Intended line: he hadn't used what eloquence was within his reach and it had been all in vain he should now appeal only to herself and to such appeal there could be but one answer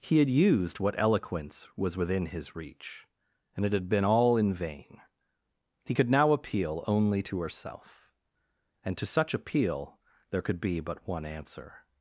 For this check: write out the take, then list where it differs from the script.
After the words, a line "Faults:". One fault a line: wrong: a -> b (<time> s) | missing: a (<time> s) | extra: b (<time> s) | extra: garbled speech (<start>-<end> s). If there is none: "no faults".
he had used what eloquence was within his reach and it had been all in vain he could now appeal only to herself and to such appeal there could be but one answer
Faults:
wrong: hadn't -> had (0.2 s)
wrong: should -> could (5.9 s)